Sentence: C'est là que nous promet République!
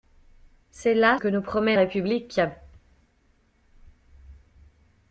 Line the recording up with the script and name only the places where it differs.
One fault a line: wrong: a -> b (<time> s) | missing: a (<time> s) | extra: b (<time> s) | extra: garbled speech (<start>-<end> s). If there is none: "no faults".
no faults